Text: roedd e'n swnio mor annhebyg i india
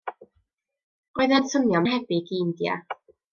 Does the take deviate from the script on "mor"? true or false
true